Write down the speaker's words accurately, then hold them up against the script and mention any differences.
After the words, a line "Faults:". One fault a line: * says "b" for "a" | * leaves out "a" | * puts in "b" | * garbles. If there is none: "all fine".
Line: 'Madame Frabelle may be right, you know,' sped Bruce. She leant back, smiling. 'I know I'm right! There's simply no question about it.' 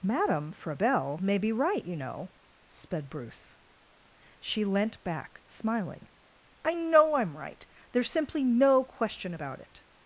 'Madame Frabelle may be right, you know,' sped Bruce. She leant back, smiling. 'I know I'm right! There's simply no question about it.'
Faults:
all fine